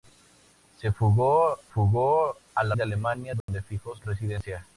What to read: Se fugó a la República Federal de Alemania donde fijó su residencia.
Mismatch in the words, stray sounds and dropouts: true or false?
true